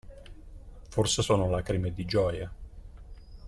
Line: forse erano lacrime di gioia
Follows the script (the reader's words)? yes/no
no